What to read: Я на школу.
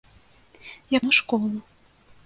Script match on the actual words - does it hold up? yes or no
yes